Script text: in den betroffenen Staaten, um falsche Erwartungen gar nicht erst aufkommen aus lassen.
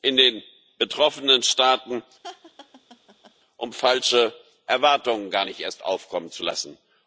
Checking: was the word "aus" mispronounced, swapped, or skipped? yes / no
yes